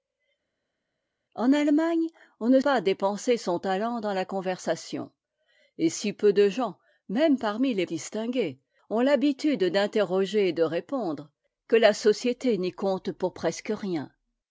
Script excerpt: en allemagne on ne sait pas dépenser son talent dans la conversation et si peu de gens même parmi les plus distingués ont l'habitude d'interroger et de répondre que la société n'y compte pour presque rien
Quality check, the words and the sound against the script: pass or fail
fail